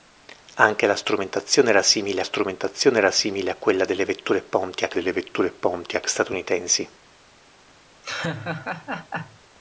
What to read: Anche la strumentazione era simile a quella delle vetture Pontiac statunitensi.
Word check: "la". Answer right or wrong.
right